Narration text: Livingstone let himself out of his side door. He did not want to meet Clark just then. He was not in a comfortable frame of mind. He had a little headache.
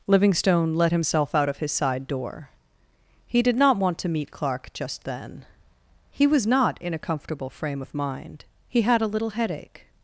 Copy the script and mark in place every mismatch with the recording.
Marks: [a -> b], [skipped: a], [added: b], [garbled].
Livingstone let himself out of his side door. He did not want to meet Clark just then. He was not in a comfortable frame of mind. He had a little headache.